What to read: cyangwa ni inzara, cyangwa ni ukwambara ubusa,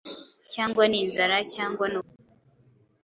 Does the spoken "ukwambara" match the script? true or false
false